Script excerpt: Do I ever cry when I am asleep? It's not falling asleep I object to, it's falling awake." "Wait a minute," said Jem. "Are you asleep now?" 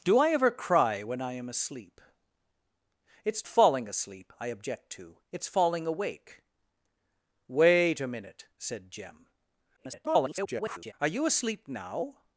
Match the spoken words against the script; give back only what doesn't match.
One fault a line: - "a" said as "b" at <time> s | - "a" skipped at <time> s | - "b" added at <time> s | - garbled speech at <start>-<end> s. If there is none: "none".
- "not" skipped at 3.5 s
- garbled speech at 9.8-10.9 s